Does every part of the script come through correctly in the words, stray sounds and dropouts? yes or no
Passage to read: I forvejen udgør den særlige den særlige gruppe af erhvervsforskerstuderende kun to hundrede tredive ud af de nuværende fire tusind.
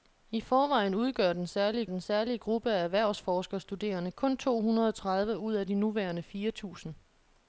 yes